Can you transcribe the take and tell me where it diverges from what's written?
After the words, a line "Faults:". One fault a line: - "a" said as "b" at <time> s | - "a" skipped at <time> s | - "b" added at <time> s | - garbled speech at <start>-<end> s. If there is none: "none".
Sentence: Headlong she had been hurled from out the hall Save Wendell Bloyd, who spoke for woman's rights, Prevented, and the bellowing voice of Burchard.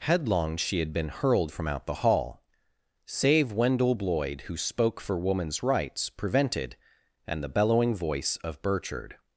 Headlong she had been hurled from out the hall Save Wendell Bloyd, who spoke for woman's rights, Prevented, and the bellowing voice of Burchard.
Faults:
none